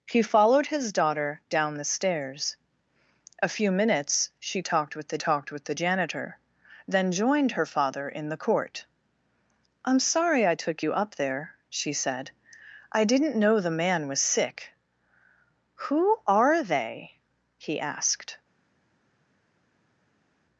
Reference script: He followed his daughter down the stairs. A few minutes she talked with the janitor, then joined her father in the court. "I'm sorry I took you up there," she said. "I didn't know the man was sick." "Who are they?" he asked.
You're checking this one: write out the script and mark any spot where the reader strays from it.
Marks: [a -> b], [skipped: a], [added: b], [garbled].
He followed his daughter down the stairs. A few minutes she talked with the [added: talked with the] janitor, then joined her father in the court. "I'm sorry I took you up there," she said. "I didn't know the man was sick." "Who are they?" he asked.